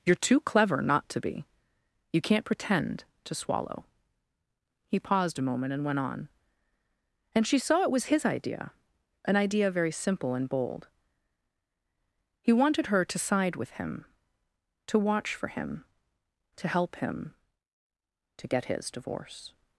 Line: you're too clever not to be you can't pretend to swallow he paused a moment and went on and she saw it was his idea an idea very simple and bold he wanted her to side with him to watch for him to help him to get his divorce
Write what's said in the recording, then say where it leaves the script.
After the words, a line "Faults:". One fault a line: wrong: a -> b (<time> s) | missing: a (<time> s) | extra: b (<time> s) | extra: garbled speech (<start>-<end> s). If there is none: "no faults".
you're too clever not to be you can't pretend to swallow he paused a moment and went on and she saw it was his idea an idea very simple and bold he wanted her to side with him to watch for him to help him to get his divorce
Faults:
no faults